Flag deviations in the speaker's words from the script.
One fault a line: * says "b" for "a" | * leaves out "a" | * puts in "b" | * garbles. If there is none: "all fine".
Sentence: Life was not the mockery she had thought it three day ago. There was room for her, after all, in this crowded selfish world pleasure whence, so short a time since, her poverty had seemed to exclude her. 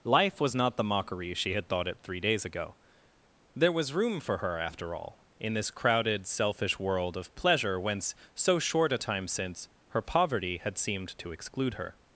* says "days" for "day"
* puts in "of"